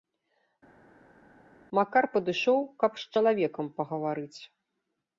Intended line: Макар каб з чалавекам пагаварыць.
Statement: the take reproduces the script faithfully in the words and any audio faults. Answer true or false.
false